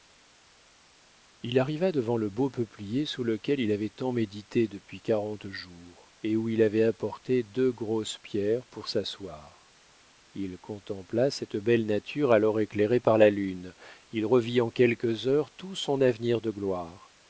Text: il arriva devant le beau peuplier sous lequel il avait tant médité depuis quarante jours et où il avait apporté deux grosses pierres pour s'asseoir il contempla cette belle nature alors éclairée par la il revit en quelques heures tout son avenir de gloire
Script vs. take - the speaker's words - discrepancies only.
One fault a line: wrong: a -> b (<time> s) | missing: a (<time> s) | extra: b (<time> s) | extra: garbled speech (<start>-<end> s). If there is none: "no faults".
extra: lune (13.3 s)